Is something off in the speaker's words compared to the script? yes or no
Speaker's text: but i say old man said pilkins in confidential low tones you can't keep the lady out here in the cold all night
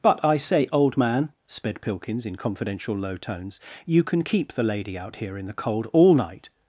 yes